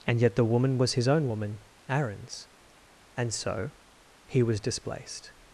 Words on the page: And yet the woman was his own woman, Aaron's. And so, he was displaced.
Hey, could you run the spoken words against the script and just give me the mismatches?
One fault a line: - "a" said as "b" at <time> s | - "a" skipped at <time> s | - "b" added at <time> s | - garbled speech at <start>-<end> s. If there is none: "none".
none